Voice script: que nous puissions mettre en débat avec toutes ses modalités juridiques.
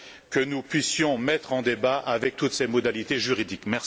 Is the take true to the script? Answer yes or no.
yes